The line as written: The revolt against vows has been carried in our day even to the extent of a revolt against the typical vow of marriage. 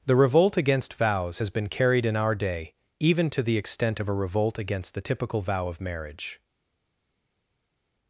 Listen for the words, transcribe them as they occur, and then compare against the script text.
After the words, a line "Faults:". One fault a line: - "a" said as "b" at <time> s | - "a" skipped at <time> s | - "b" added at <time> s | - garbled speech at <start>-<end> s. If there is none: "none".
The revolt against vows has been carried in our day even to the extent of a revolt against the typical vow of marriage.
Faults:
none